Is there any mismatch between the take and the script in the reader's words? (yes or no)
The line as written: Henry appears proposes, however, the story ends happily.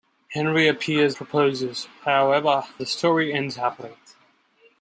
no